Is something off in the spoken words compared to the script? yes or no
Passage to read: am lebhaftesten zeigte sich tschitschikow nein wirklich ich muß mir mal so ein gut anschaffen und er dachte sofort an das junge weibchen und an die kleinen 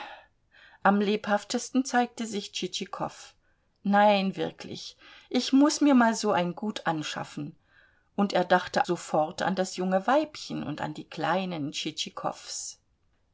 no